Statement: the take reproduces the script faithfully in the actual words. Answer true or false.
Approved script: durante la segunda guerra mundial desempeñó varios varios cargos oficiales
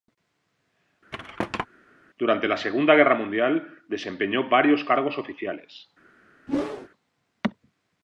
false